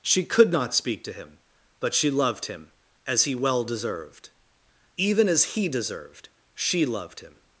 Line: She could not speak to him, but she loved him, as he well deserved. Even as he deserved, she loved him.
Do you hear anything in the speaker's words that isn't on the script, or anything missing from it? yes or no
no